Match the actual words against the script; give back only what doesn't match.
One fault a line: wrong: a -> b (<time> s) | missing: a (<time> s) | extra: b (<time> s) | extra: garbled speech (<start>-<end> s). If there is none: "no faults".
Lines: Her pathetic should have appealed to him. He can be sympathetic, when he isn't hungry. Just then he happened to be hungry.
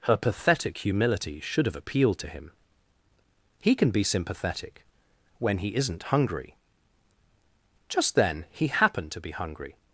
extra: humility (0.8 s)